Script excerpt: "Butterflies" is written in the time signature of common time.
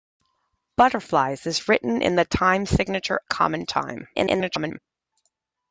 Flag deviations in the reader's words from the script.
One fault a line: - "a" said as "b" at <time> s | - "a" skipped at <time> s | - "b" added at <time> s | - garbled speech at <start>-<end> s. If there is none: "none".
- "of" skipped at 3.2 s
- garbled speech at 4.1-4.8 s